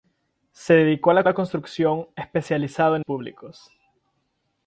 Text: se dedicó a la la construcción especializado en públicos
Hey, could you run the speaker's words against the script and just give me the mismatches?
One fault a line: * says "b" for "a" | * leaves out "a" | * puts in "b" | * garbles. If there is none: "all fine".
all fine